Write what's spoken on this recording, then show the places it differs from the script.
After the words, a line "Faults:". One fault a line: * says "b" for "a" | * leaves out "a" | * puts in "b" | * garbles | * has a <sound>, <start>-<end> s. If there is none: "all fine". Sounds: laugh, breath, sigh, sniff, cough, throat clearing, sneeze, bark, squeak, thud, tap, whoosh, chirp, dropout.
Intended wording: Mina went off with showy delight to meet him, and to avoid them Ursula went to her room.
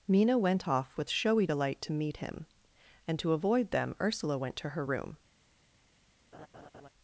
Mina went off with showy delight to meet him, and to avoid them Ursula went to her room.
Faults:
* has a laugh, 6.3-6.9 s